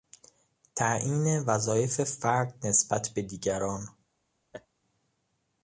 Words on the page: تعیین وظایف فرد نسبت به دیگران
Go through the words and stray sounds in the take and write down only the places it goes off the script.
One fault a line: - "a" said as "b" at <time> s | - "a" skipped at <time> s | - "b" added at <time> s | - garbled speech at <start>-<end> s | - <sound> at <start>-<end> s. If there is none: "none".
- laugh at 4.5-4.7 s